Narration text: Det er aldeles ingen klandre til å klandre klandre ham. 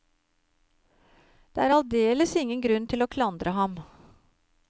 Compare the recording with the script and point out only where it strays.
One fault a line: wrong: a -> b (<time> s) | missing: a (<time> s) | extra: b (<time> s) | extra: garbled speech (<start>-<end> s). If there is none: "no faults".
wrong: klandre -> grunn (2.7 s)
missing: klandre (3.6 s)